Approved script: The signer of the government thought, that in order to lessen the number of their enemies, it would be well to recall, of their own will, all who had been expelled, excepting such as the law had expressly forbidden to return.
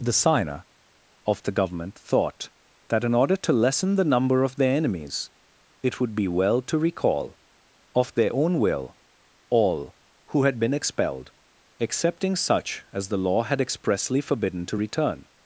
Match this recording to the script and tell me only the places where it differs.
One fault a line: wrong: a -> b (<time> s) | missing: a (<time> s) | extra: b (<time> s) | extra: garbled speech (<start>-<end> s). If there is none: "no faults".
no faults